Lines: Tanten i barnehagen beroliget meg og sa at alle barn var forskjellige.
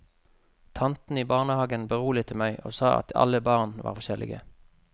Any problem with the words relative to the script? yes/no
no